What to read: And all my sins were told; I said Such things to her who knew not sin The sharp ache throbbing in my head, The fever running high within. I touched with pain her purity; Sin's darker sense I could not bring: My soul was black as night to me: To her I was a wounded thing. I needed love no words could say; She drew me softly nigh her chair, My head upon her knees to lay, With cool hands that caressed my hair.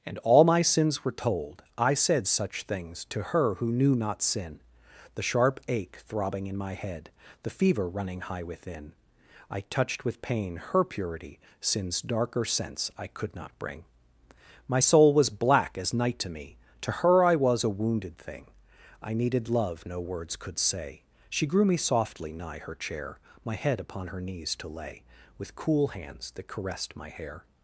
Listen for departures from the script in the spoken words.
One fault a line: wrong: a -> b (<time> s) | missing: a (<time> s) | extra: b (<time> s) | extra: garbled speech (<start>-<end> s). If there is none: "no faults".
wrong: drew -> grew (21.5 s)